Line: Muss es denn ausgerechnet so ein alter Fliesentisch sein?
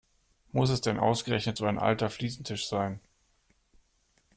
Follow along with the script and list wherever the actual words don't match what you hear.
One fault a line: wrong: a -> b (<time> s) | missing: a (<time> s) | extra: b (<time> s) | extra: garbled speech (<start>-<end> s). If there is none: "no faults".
no faults